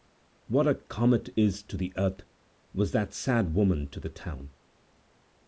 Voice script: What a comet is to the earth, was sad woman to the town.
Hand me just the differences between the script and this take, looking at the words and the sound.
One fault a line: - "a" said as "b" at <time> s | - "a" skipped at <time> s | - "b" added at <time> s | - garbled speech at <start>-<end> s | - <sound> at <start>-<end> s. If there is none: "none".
- "that" added at 2.9 s